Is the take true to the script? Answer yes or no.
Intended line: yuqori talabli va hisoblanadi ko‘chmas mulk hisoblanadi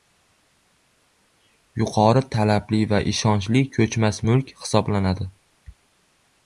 no